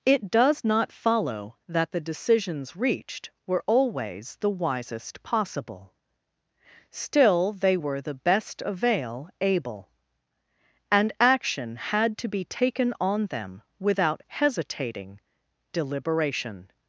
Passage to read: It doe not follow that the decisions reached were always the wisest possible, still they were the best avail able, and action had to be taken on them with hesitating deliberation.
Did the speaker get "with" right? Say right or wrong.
wrong